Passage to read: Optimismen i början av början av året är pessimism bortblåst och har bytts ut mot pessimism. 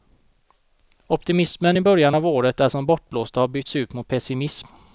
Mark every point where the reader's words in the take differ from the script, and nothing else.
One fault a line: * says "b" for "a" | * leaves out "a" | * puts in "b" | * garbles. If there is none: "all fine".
* leaves out "början av"
* says "som" for "pessimism"